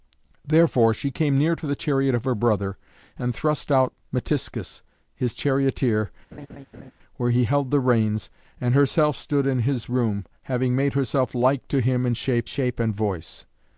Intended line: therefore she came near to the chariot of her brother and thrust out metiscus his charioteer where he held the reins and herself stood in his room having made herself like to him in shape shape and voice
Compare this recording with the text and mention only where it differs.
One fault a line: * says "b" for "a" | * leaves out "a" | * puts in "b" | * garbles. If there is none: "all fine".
all fine